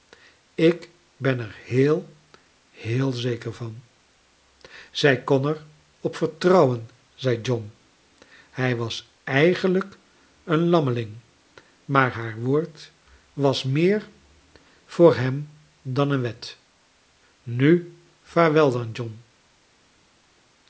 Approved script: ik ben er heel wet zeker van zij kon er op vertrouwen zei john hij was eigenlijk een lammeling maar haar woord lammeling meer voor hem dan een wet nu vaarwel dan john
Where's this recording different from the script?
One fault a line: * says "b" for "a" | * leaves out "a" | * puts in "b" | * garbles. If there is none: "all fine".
* says "heel" for "wet"
* says "was" for "lammeling"